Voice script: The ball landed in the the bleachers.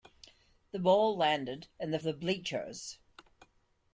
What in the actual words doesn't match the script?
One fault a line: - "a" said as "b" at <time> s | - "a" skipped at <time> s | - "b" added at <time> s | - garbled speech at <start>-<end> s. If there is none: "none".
none